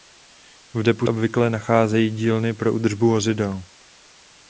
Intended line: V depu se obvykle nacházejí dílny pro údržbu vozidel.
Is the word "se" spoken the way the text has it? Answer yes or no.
no